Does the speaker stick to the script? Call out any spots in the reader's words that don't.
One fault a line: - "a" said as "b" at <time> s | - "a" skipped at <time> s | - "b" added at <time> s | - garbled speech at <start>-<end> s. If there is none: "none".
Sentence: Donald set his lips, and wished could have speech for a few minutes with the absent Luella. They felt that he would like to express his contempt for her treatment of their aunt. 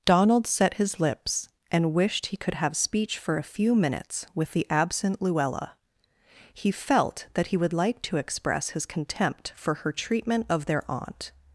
- "he" added at 2.3 s
- "They" said as "He" at 6.5 s